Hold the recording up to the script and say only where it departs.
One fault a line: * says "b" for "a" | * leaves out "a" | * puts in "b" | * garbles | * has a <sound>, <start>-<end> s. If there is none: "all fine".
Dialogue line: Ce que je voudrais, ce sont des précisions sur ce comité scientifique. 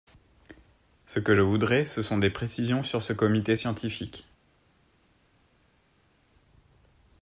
all fine